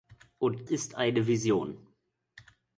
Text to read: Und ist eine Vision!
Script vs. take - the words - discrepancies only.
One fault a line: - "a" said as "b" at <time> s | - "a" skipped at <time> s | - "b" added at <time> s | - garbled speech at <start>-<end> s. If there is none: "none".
none